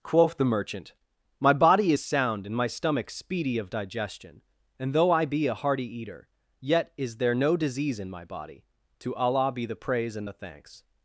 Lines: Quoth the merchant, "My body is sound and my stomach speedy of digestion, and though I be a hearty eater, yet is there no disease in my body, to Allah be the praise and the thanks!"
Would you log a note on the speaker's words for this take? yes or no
no